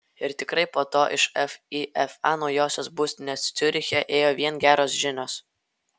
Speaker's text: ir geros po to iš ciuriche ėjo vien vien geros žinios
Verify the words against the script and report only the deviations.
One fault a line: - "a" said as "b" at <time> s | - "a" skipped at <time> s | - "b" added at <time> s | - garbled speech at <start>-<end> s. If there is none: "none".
- "geros" said as "tikrai" at 0.4 s
- "fifa naujosios būstinės" added at 1.4 s
- "vien" skipped at 4.6 s